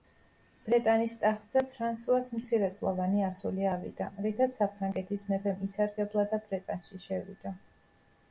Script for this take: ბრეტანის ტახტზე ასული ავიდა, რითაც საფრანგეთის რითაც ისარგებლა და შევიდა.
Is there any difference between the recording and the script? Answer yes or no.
yes